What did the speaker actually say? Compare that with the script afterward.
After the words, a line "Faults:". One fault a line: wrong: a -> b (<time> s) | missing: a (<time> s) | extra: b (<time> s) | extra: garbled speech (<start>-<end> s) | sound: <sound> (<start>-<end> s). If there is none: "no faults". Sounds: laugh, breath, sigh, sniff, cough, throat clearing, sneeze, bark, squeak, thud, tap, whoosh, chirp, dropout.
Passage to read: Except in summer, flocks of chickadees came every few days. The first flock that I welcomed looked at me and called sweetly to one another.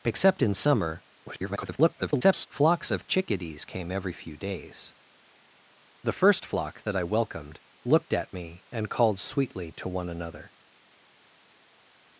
Except in summer, [garbled] flocks of chickadees came every few days. The first flock that I welcomed looked at me and called sweetly to one another.
Faults:
extra: garbled speech (1.3-2.5 s)